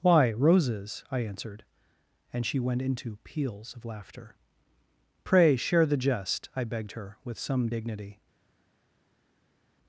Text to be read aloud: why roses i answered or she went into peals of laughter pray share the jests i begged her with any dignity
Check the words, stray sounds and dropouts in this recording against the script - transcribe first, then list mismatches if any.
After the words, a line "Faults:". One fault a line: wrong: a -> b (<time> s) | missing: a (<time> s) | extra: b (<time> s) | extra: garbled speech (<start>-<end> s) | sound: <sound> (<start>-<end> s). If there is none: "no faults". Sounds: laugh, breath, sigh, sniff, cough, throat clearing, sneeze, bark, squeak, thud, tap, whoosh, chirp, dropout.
why roses i answered and she went into peals of laughter pray share the jest i begged her with some dignity
Faults:
wrong: or -> and (2.3 s)
wrong: jests -> jest (6.0 s)
wrong: any -> some (7.4 s)